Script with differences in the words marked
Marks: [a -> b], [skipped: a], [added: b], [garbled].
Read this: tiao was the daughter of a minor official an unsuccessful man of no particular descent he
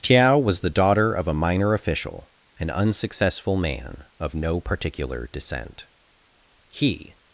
tiao was the daughter of a minor official an unsuccessful man of no particular descent he